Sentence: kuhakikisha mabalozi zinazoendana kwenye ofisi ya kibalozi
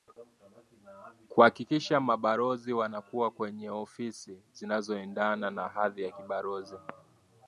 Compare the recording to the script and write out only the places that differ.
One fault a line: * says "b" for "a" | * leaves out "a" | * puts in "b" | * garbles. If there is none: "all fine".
* says "wanakuwa" for "zinazoendana"
* puts in "zinazoendana na hadhi"